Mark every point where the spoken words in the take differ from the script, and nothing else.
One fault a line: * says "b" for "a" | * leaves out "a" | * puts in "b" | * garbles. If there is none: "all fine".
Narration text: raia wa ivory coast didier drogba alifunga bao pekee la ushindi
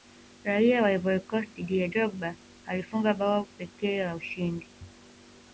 all fine